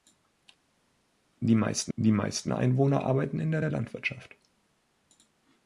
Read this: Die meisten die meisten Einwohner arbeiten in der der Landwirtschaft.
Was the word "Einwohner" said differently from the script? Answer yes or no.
no